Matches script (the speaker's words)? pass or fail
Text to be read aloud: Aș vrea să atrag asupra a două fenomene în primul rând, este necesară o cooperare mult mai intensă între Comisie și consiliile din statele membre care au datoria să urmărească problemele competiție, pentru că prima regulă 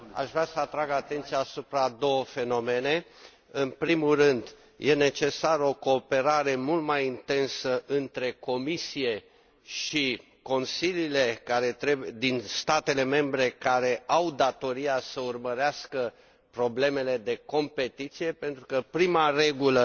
fail